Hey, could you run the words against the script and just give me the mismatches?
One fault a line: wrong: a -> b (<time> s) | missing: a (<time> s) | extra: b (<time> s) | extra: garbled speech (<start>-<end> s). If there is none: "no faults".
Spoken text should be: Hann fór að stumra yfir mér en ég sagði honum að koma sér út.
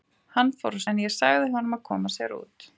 missing: stumra yfir mér (0.8 s)